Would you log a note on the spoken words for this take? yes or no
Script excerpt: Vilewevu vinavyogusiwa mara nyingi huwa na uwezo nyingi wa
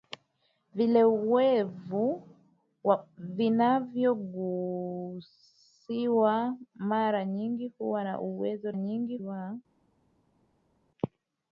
no